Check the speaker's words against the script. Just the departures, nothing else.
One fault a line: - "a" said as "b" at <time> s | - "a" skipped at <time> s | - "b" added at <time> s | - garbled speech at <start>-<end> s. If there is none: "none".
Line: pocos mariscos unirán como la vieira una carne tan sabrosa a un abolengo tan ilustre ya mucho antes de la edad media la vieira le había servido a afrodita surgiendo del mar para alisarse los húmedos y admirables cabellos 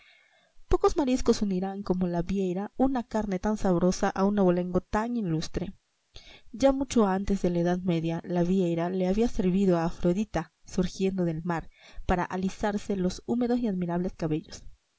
none